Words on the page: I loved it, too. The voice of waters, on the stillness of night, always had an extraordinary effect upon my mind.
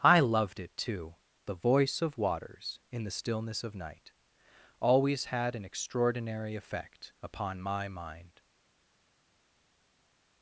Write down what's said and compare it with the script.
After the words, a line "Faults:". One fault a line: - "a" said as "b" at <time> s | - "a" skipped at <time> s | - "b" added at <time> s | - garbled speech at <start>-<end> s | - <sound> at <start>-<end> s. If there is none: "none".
I loved it, too. The voice of waters, in the stillness of night, always had an extraordinary effect upon my mind.
Faults:
- "on" said as "in" at 2.9 s